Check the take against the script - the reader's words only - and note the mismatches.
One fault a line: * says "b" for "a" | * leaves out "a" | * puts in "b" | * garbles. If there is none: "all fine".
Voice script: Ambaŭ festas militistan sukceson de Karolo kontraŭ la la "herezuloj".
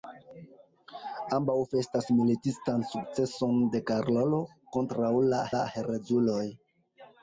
all fine